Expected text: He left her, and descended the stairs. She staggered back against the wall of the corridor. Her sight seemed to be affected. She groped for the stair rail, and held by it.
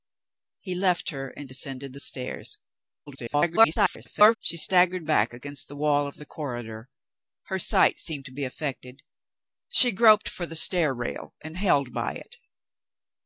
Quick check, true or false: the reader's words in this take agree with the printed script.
false